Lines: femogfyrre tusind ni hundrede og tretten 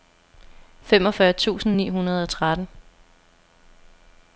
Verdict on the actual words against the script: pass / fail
pass